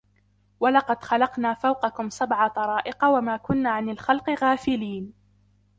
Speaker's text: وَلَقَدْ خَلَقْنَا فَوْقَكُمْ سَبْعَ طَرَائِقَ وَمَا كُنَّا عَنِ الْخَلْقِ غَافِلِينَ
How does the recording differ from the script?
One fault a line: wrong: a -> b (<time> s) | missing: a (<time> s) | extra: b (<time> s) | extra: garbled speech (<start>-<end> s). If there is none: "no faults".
no faults